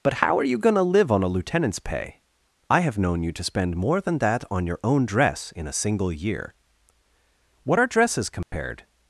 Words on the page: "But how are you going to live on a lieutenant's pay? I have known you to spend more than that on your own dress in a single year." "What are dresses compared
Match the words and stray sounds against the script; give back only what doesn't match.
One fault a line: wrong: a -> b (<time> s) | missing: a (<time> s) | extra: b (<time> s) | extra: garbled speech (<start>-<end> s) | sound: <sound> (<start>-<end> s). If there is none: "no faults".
sound: dropout (8.4-8.5 s)